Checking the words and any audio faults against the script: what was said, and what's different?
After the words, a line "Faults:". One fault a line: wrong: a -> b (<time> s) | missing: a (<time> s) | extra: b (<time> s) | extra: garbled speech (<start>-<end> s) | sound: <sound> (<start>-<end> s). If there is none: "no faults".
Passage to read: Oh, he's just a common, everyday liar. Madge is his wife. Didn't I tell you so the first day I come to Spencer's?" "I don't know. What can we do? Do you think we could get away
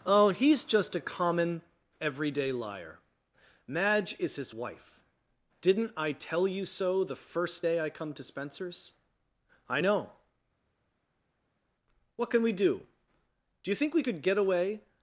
Oh, he's just a common, everyday liar. Madge is his wife. Didn't I tell you so the first day I come to Spencer's?" "I know. What can we do? Do you think we could get away
Faults:
missing: don't (9.8 s)